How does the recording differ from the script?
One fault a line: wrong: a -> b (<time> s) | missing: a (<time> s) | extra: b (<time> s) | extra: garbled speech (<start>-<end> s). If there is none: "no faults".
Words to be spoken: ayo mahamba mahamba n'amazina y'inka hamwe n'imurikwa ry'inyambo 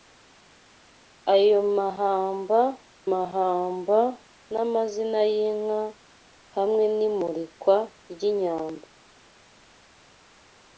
no faults